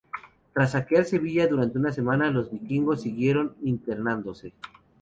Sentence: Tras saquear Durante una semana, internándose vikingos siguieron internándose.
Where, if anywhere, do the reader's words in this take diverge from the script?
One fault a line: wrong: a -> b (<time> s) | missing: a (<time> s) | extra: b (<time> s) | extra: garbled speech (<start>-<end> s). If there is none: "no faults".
extra: Sevilla (1.1 s)
wrong: internándose -> los (2.3 s)